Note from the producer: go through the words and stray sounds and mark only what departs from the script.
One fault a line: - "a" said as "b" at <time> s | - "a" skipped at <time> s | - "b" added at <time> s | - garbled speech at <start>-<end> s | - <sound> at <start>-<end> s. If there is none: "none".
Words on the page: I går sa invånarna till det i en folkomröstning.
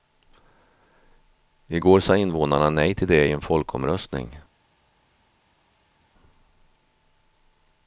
- "nej" added at 2.7 s